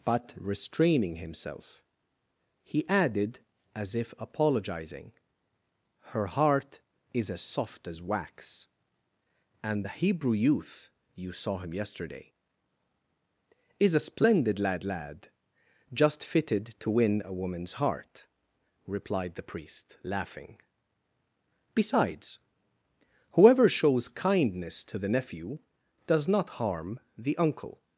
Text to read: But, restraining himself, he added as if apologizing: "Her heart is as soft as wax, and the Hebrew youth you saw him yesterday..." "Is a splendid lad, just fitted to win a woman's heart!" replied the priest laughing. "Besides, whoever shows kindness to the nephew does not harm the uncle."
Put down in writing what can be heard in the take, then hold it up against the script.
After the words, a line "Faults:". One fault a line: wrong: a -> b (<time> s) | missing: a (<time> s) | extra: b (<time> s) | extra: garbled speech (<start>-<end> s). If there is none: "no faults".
But, restraining himself, he added as if apologizing: "Her heart is as soft as wax, and the Hebrew youth you saw him yesterday..." "Is a splendid lad lad, just fitted to win a woman's heart!" replied the priest laughing. "Besides, whoever shows kindness to the nephew does not harm the uncle."
Faults:
extra: lad (14.8 s)